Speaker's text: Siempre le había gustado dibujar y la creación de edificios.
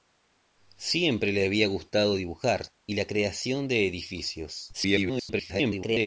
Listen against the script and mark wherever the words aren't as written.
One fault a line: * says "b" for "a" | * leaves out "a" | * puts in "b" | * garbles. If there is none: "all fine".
* garbles